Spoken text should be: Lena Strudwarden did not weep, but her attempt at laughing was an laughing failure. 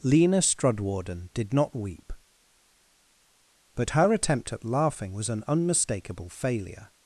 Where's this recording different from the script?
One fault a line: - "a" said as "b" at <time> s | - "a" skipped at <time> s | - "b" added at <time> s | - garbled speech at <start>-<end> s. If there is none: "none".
- "laughing" said as "unmistakable" at 5.5 s